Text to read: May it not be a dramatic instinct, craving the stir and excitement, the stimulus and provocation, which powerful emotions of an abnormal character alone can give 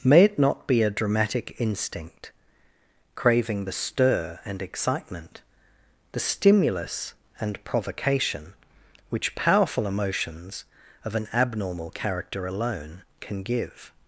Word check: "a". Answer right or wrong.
right